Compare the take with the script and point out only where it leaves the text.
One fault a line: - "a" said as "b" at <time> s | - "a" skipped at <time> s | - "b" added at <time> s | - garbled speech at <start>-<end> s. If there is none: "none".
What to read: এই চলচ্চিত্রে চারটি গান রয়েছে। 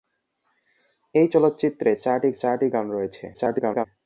- "চারটি" added at 2.3 s
- garbled speech at 3.3-3.9 s